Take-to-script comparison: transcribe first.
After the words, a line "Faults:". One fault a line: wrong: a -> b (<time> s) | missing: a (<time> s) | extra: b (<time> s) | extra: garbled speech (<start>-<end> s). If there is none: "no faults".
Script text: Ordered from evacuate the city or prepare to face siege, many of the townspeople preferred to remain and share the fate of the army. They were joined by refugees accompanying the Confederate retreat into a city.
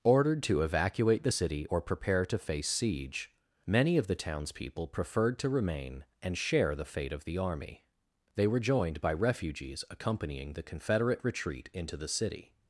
Ordered to evacuate the city or prepare to face siege, many of the townspeople preferred to remain and share the fate of the army. They were joined by refugees accompanying the Confederate retreat into the city.
Faults:
wrong: from -> to (0.4 s)
wrong: a -> the (12.0 s)